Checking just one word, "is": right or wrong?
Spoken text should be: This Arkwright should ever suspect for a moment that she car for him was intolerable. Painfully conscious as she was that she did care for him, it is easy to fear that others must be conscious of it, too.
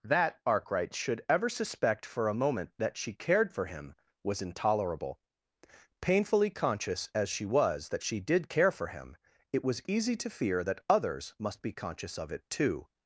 wrong